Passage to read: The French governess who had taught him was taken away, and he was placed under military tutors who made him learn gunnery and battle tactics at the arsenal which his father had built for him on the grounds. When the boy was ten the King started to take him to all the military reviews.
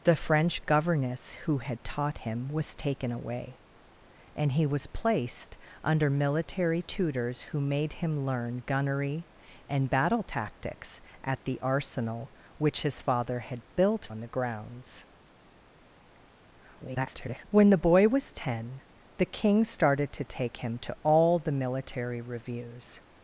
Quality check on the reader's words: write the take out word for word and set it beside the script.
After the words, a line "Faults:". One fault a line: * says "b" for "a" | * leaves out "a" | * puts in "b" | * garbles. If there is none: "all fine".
The French governess who had taught him was taken away, and he was placed under military tutors who made him learn gunnery and battle tactics at the arsenal which his father had built on the grounds. [garbled] When the boy was ten the King started to take him to all the military reviews.
Faults:
* leaves out "for him"
* garbles